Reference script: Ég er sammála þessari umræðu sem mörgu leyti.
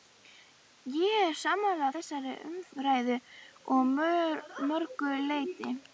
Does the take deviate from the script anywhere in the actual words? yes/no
yes